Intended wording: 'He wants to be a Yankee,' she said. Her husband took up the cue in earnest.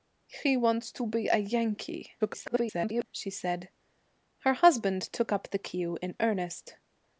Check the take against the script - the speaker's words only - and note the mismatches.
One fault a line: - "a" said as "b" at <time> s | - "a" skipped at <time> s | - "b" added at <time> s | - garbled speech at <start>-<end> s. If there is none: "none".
- garbled speech at 2.2-3.0 s